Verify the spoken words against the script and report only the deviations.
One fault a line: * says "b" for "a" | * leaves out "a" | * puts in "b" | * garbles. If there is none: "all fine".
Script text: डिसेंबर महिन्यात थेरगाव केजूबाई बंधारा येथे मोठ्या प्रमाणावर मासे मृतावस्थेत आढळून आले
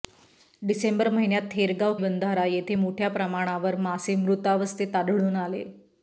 * leaves out "केजूबाई"